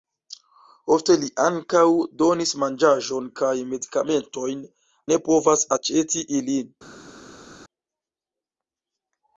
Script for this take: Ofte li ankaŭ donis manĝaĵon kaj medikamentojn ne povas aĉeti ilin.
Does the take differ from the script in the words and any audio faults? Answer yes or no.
no